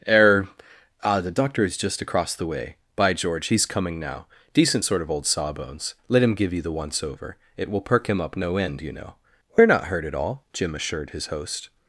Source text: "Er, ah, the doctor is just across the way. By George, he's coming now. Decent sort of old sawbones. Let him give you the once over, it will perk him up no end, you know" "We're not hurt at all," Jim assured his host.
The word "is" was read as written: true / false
true